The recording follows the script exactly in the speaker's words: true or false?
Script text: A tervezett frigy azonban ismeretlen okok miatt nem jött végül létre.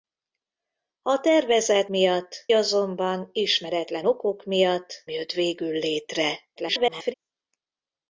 false